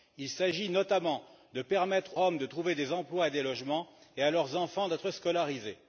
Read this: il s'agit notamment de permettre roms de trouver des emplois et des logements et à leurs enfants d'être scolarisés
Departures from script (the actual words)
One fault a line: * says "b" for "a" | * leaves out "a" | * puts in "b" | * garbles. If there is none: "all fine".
all fine